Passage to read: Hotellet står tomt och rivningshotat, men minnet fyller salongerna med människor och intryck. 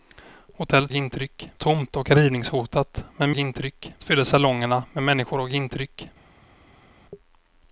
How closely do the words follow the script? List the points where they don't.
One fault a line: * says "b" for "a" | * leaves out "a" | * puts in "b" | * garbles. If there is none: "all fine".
* says "intryck" for "står"
* says "intryck" for "minnet"